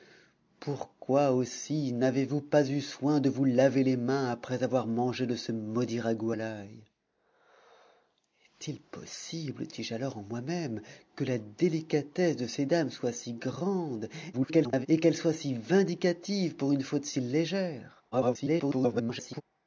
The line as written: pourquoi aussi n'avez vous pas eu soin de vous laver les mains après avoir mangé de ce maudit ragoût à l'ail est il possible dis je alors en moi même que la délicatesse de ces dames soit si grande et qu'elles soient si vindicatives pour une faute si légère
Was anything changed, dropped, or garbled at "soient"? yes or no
no